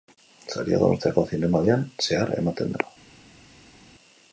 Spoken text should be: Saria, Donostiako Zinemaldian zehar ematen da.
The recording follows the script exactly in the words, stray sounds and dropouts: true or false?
true